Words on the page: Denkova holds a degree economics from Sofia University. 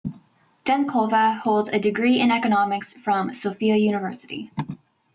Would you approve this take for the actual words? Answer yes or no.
no